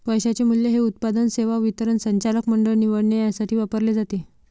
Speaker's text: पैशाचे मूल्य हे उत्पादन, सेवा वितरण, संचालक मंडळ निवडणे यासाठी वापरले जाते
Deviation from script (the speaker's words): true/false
false